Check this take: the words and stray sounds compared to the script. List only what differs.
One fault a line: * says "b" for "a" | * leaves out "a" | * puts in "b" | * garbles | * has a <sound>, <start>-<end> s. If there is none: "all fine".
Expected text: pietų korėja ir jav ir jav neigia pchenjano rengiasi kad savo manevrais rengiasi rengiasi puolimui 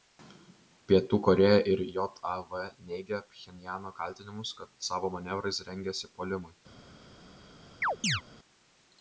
* leaves out "ir jav"
* says "kaltinimus" for "rengiasi"
* leaves out "rengiasi"
* has a chirp, 7.8-8.2 s